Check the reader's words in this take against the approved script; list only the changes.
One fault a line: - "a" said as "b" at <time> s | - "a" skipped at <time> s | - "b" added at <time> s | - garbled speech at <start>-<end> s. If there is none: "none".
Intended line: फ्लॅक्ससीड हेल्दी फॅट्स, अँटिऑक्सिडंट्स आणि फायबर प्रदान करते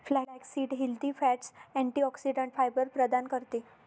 - "आणि" skipped at 2.5 s